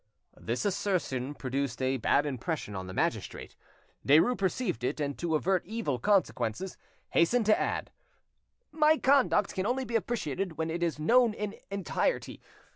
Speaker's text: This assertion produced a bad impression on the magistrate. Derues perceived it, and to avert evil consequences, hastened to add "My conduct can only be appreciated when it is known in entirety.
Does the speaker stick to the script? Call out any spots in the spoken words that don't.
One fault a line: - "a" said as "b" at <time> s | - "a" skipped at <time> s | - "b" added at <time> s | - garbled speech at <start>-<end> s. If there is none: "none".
none